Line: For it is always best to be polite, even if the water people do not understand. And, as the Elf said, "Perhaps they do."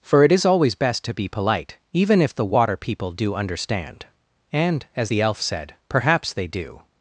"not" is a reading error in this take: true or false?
true